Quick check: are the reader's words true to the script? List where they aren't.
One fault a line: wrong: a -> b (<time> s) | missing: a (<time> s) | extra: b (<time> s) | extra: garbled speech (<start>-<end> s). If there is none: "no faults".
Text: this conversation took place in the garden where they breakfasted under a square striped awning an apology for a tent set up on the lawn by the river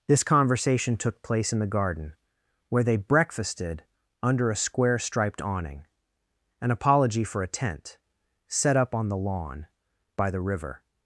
no faults